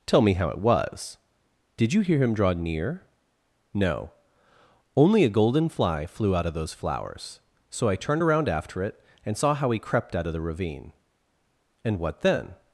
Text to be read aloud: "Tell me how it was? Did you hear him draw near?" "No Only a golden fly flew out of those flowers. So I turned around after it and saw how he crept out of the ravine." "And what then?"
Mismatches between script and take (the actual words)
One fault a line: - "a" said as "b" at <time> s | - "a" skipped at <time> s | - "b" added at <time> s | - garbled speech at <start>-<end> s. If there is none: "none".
none